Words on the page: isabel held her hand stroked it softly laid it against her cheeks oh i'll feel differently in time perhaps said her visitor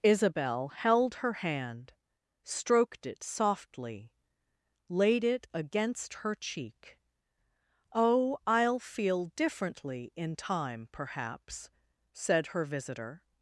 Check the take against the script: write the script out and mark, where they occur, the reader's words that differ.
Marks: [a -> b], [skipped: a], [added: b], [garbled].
isabel held her hand stroked it softly laid it against her [cheeks -> cheek] oh i'll feel differently in time perhaps said her visitor